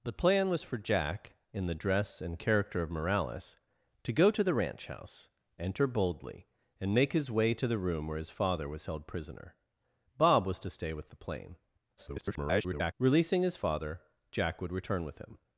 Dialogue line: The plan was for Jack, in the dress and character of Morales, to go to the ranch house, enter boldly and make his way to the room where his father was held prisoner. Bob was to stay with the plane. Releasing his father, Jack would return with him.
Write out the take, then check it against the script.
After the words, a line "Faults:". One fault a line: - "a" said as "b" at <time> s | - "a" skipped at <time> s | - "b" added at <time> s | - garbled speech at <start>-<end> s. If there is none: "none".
The plan was for Jack, in the dress and character of Morales, to go to the ranch house, enter boldly and make his way to the room where his father was held prisoner. Bob was to stay with the plane. [garbled] Releasing his father, Jack would return with him.
Faults:
- garbled speech at 12.0-12.9 s